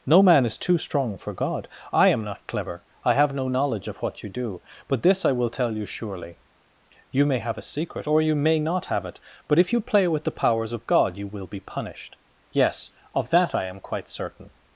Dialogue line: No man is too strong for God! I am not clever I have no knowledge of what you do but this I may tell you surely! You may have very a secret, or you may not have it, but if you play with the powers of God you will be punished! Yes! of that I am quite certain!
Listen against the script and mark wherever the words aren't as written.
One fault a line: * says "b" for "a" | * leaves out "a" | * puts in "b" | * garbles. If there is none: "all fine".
* says "will" for "may"
* leaves out "very"